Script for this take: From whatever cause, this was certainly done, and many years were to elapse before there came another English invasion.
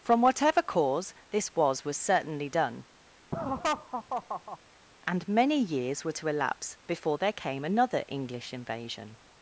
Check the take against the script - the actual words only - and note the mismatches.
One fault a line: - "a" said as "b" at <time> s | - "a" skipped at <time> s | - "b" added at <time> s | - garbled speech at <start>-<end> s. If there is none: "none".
- "was" added at 1.9 s